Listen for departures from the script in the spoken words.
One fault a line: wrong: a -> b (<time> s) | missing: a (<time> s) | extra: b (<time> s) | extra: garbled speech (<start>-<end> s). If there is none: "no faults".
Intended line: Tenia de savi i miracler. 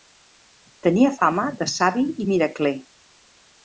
extra: fama (1.2 s)